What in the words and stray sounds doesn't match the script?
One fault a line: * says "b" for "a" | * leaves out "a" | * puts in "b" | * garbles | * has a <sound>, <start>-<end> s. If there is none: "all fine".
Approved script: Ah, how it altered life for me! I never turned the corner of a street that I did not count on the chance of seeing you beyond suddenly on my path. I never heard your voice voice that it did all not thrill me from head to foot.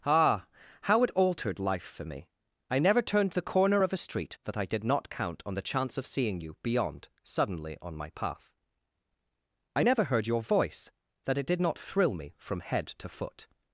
* leaves out "voice"
* leaves out "all"